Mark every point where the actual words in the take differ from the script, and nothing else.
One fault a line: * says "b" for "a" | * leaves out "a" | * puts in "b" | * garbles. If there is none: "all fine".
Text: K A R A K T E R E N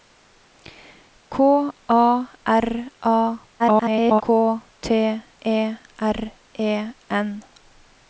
* garbles